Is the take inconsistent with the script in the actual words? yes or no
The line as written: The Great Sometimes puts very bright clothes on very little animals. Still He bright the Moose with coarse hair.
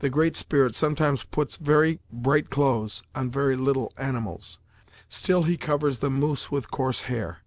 yes